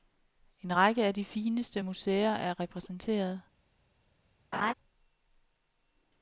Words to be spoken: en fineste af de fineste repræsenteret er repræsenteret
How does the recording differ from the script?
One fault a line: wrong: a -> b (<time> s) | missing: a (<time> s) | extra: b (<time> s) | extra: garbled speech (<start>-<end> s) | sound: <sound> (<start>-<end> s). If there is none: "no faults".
wrong: fineste -> række (0.7 s)
wrong: repræsenteret -> museer (1.8 s)
sound: laugh (4.5-4.7 s)